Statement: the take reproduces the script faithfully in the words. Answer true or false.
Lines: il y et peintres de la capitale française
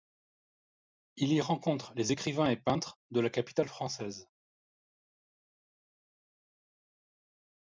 false